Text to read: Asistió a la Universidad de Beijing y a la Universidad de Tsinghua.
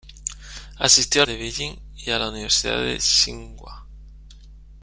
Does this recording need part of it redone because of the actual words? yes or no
yes